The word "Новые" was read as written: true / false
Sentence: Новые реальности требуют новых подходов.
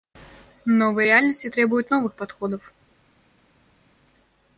true